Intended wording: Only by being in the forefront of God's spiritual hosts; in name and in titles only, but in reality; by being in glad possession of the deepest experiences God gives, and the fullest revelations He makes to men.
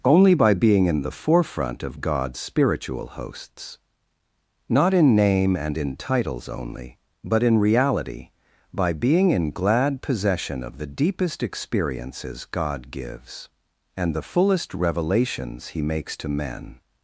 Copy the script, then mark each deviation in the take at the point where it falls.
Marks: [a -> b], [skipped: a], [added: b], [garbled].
Only by being in the forefront of God's spiritual hosts; [added: not] in name and in titles only, but in reality; by being in glad possession of the deepest experiences God gives, and the fullest revelations He makes to men.